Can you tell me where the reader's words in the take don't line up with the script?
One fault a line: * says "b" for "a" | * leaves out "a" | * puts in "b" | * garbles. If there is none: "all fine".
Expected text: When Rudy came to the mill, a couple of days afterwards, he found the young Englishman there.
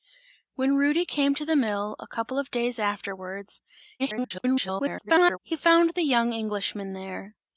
* garbles